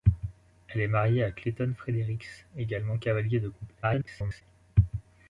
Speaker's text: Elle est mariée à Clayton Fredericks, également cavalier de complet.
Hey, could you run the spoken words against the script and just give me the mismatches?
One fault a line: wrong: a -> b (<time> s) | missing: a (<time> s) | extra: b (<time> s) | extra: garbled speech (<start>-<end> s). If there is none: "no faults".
extra: garbled speech (3.8-4.4 s)